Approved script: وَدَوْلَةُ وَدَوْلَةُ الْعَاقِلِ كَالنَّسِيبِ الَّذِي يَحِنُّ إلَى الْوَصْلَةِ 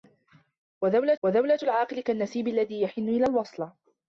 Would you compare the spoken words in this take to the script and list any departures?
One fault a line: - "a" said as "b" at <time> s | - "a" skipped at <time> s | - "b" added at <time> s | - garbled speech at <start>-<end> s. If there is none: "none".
none